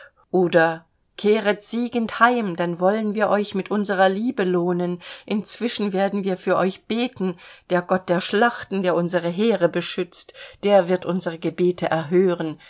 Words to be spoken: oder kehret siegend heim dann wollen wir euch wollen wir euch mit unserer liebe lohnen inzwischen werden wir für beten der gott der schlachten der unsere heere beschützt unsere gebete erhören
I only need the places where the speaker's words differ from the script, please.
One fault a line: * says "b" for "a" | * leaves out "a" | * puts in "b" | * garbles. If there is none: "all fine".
* leaves out "wollen wir euch"
* puts in "euch"
* puts in "der wird"